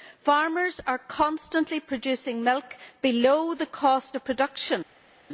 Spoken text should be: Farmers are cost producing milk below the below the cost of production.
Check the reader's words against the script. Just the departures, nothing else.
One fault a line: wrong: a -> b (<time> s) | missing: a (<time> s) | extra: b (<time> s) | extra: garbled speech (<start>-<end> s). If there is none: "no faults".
wrong: cost -> constantly (1.0 s)
missing: below the (3.6 s)